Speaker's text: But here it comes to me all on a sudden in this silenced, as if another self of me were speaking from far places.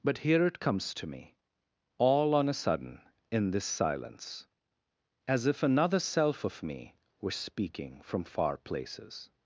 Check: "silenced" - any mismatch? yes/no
yes